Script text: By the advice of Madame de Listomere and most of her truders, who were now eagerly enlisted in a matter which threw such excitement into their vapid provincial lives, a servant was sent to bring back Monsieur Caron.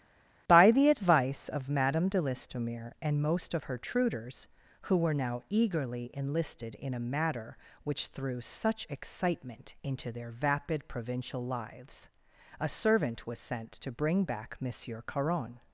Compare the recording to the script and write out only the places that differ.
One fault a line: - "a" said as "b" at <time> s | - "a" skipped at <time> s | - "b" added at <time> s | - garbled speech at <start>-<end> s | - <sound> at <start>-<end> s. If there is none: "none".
none